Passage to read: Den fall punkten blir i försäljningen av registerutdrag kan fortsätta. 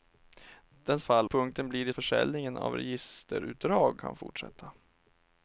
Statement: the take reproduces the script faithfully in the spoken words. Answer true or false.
true